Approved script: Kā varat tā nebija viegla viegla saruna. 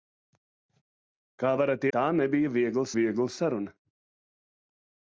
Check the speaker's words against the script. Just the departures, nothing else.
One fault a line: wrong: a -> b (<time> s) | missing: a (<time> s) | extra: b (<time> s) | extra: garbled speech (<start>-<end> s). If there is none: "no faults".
no faults